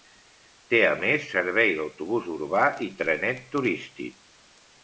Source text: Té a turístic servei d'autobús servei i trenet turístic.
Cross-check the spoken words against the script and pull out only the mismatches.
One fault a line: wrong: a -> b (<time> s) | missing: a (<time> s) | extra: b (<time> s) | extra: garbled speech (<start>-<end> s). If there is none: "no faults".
wrong: turístic -> més (1.0 s)
wrong: servei -> urbà (2.4 s)